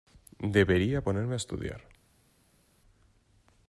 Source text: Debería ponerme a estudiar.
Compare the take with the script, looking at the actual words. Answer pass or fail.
pass